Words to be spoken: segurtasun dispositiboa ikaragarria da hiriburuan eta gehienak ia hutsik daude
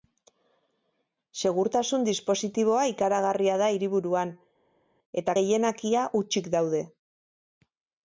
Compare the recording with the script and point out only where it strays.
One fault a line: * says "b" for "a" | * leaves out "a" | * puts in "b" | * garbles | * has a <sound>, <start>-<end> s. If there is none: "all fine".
all fine